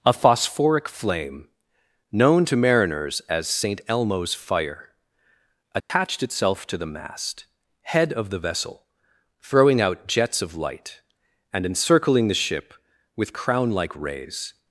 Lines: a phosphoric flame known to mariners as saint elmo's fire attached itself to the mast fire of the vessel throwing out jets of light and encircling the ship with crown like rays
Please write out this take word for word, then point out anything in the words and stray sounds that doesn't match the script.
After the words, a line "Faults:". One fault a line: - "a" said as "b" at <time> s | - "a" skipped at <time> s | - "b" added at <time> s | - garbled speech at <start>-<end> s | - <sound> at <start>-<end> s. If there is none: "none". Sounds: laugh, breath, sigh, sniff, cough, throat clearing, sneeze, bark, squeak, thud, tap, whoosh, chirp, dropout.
a phosphoric flame known to mariners as saint elmo's fire attached itself to the mast head of the vessel throwing out jets of light and encircling the ship with crown like rays
Faults:
- dropout at 5.8-5.9 s
- "fire" said as "head" at 7.8 s